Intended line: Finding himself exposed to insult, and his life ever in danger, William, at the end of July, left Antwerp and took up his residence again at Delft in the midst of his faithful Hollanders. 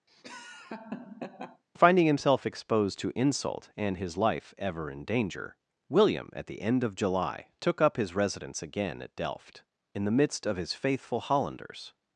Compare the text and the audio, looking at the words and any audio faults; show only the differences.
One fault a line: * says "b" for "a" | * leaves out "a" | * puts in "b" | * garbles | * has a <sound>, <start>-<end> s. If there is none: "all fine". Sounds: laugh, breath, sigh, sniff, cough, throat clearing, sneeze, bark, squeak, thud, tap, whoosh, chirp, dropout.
* has a laugh, 0.1-1.6 s
* leaves out "left Antwerp and"